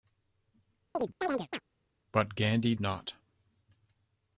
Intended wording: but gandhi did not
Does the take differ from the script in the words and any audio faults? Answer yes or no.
yes